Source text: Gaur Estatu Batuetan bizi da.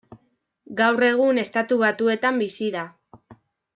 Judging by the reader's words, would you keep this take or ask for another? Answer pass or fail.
fail